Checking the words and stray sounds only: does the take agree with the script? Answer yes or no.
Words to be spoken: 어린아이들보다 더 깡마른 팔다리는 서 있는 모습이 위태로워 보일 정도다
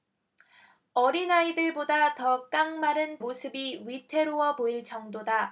no